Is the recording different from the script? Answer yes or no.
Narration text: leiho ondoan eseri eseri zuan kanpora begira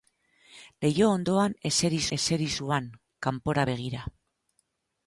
no